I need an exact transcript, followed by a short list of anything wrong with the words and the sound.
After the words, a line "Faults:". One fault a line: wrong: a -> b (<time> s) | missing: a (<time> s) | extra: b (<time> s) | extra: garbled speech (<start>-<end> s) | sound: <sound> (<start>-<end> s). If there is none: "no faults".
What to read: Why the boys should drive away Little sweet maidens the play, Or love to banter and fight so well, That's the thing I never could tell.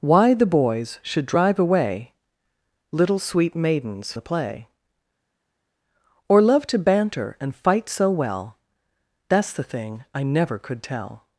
Why the boys should drive away Little sweet maidens the play, Or love to banter and fight so well, That's the thing I never could tell.
Faults:
no faults